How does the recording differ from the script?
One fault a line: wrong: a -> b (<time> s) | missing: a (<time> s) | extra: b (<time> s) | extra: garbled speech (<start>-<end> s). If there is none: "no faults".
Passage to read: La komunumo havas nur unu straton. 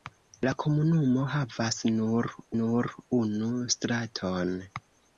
extra: nur (2.6 s)